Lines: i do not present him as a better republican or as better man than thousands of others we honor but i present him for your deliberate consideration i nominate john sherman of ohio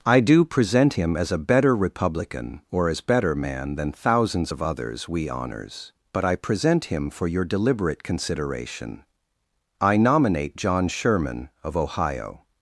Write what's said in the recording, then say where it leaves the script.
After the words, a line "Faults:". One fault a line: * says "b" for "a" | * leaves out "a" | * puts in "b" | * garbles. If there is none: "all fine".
i do present him as a better republican or as better man than thousands of others we honors but i present him for your deliberate consideration i nominate john sherman of ohio
Faults:
* leaves out "not"
* says "honors" for "honor"